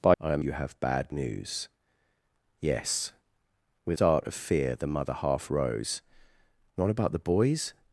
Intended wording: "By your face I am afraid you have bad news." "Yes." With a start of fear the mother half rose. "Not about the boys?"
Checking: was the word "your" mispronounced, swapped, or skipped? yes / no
yes